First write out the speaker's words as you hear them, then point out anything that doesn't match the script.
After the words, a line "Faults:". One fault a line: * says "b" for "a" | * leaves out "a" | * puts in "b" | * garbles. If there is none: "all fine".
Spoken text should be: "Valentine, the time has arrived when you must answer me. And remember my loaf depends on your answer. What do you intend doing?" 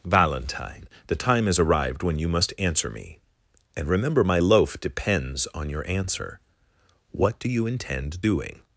"Valentine, the time has arrived when you must answer me. And remember my loaf depends on your answer. What do you intend doing?"
Faults:
all fine